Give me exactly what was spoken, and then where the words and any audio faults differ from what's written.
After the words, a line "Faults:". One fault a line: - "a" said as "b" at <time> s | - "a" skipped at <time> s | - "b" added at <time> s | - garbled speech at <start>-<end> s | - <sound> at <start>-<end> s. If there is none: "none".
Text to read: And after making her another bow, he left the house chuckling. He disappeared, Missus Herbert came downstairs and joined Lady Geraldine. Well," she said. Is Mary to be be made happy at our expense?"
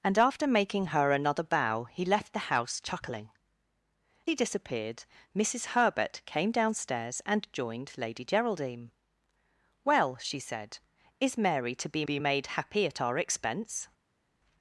And after making her another bow, he left the house chuckling. He disappeared, Missus Herbert came downstairs and joined Lady Geraldine. Well," she said. Is Mary to be be made happy at our expense?"
Faults:
none